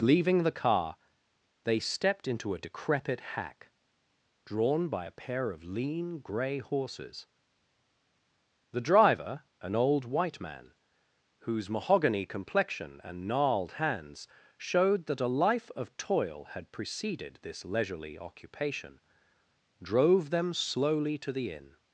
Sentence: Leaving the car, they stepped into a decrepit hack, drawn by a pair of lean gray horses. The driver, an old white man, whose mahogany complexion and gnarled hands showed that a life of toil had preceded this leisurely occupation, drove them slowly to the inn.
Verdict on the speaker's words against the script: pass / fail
pass